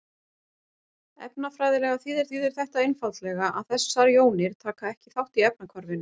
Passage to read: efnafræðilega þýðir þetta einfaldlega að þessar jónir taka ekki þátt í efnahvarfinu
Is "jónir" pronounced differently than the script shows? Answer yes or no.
no